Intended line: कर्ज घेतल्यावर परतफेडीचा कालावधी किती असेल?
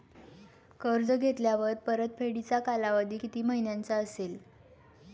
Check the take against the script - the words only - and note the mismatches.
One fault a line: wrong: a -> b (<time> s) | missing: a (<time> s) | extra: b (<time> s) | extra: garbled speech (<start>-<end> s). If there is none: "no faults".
extra: महिन्यांचा (3.4 s)